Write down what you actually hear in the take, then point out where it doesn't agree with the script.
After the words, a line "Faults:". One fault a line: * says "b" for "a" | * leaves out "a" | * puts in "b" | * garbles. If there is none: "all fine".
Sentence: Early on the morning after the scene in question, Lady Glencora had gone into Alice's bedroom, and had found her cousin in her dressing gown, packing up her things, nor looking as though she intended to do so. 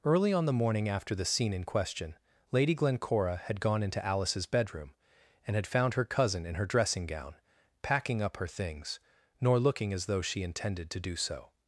Early on the morning after the scene in question, Lady Glencora had gone into Alice's bedroom, and had found her cousin in her dressing gown, packing up her things, nor looking as though she intended to do so.
Faults:
all fine